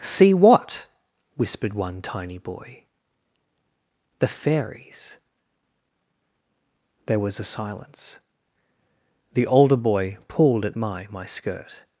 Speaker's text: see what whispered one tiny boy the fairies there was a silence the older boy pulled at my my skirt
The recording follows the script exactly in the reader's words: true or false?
true